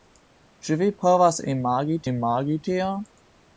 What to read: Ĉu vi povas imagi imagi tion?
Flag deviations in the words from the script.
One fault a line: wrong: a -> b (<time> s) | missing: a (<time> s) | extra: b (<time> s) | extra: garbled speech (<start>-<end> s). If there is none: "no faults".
no faults